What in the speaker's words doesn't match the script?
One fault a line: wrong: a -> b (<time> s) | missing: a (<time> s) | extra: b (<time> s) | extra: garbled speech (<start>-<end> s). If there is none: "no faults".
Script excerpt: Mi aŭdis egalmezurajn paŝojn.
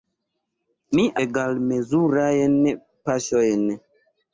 missing: aŭdis (1.1 s)